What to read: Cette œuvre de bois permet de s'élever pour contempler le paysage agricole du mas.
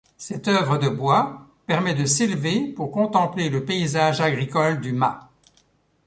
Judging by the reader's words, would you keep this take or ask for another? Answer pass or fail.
pass